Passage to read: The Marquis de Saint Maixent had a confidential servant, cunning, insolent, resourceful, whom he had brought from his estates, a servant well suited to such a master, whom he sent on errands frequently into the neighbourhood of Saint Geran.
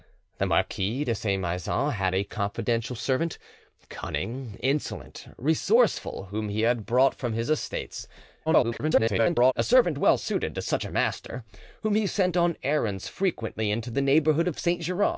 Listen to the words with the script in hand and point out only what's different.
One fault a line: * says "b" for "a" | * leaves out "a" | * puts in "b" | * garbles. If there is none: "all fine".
* garbles